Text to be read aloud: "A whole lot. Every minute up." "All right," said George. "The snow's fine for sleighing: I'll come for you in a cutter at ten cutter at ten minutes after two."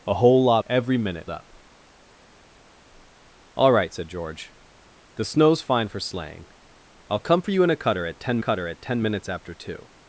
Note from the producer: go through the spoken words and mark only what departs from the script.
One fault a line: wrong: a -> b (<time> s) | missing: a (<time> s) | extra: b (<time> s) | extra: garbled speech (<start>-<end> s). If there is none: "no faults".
no faults